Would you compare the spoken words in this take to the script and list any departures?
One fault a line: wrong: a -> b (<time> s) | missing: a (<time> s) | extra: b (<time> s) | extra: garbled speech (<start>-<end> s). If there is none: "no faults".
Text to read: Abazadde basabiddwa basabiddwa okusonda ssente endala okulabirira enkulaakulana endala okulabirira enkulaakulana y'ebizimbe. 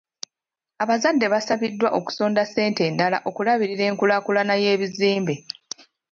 missing: basabiddwa (1.9 s)
missing: endala okulabirira enkulaakulana (4.5 s)